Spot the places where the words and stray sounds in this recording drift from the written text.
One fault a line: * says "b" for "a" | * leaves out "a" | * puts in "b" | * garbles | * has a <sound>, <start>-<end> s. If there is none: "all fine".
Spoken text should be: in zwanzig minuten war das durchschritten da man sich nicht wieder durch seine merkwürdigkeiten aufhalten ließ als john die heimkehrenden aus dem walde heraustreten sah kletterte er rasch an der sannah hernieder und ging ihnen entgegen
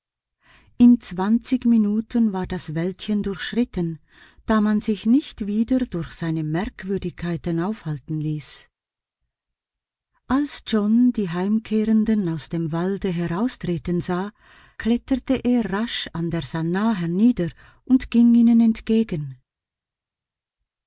* puts in "wäldchen"